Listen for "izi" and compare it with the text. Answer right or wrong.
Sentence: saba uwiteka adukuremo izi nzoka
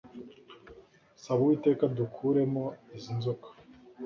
right